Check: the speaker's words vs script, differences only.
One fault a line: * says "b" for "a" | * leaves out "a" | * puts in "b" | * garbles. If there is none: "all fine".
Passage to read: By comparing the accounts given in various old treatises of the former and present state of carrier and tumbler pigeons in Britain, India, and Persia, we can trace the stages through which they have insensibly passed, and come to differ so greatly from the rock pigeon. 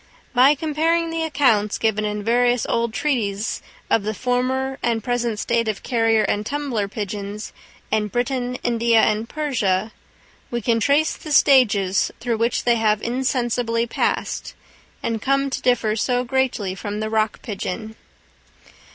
all fine